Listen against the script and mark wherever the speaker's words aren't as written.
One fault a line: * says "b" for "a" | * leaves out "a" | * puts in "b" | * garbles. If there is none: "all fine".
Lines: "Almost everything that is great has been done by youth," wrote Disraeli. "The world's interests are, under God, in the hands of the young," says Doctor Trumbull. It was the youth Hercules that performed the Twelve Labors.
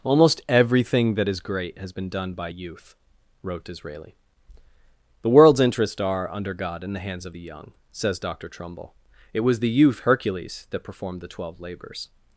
all fine